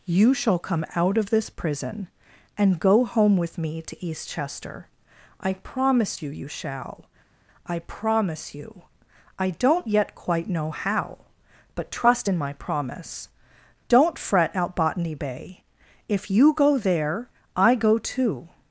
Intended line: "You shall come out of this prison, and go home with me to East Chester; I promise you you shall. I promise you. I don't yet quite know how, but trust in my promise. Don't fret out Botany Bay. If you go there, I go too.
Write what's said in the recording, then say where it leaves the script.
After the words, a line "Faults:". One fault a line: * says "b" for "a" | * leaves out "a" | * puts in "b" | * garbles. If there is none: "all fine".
"You shall come out of this prison, and go home with me to East Chester; I promise you you shall. I promise you. I don't yet quite know how, but trust in my promise. Don't fret out Botany Bay. If you go there, I go too.
Faults:
all fine